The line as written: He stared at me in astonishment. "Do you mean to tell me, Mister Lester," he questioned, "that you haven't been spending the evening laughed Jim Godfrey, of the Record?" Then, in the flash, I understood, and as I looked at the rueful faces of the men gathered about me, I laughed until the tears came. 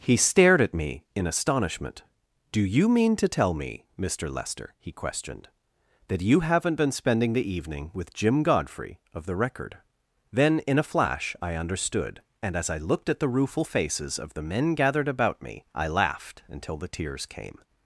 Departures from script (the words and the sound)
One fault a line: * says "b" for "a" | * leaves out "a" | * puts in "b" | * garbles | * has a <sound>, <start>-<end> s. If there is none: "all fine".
* says "with" for "laughed"
* says "a" for "the"